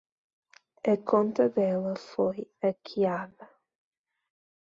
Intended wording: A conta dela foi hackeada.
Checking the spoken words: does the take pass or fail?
pass